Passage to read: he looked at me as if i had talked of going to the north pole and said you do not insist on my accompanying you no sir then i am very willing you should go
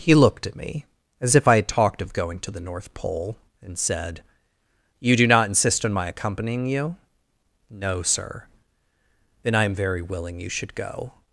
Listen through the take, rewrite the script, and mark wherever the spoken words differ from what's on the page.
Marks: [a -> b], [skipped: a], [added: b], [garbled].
he looked at me as if i had talked of going to the north pole and said you do not insist on my accompanying you no sir then i am very willing you should go